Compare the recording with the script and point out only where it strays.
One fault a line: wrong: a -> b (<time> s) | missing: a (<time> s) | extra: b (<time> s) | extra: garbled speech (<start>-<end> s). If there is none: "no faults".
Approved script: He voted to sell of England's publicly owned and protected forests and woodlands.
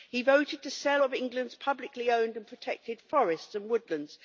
no faults